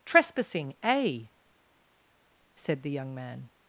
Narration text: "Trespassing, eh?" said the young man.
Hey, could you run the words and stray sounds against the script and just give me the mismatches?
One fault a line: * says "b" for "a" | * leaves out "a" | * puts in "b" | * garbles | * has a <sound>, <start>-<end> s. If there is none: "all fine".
all fine